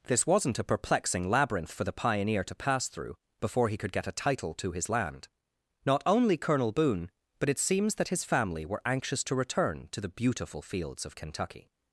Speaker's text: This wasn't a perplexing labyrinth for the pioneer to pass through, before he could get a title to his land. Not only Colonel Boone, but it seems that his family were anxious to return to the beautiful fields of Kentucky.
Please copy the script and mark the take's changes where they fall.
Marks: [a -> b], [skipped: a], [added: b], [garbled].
This wasn't a perplexing labyrinth for the pioneer to pass through, before he could get a title to his land. Not only Colonel Boone, but it seems that his family were anxious to return to the beautiful fields of Kentucky.